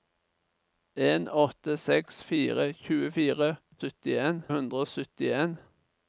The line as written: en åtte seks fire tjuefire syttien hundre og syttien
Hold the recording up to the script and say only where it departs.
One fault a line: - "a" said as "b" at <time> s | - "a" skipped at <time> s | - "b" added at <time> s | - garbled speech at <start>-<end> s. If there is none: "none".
none